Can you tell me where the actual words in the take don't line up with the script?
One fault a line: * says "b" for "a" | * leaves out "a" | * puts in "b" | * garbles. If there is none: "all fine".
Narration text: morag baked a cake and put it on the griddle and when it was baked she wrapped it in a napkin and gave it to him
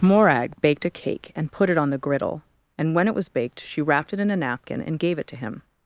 all fine